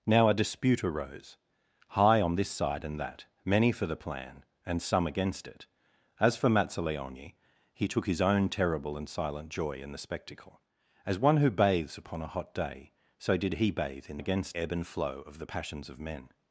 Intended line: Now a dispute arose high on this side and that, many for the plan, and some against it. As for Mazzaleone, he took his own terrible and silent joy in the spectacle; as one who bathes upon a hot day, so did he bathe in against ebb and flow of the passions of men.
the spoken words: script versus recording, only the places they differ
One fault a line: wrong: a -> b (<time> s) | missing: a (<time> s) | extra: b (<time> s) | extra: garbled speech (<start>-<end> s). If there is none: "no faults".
no faults